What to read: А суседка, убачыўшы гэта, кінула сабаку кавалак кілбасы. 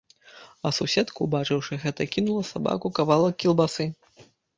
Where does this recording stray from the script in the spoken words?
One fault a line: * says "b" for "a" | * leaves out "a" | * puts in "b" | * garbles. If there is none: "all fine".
all fine